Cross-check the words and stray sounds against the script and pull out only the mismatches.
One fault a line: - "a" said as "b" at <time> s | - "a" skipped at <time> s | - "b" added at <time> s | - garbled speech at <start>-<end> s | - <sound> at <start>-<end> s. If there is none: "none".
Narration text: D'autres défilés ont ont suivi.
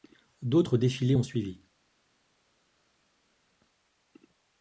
- "ont" skipped at 1.2 s